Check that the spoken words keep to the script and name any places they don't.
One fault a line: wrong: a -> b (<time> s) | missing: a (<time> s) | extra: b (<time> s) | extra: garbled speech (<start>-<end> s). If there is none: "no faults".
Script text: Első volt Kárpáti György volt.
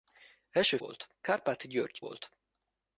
no faults